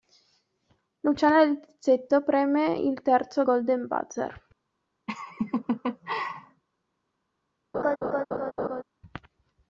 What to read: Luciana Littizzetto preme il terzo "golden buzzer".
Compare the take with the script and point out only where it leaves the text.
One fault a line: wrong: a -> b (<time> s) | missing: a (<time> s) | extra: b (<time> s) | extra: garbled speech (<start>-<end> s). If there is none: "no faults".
no faults